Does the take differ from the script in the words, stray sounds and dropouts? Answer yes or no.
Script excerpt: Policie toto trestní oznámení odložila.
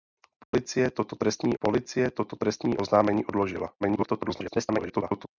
yes